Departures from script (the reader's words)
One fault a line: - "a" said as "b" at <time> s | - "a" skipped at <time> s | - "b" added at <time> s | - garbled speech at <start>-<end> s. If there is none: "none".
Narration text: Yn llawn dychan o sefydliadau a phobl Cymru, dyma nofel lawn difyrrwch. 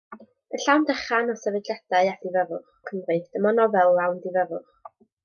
- "phobl" said as "difyrrwch" at 2.3 s